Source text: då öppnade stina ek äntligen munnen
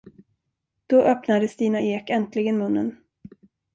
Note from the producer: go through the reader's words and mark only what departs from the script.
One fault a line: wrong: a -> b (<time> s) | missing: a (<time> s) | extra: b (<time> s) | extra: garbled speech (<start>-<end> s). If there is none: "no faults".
no faults